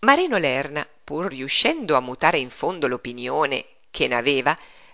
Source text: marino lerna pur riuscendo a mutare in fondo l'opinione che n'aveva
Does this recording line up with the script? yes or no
yes